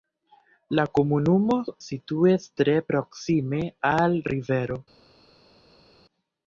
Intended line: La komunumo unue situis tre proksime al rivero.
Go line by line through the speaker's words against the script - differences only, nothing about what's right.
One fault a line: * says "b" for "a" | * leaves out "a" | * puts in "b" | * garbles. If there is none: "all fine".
* leaves out "unue"